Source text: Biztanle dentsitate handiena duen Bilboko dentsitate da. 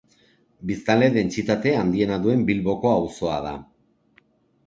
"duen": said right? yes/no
yes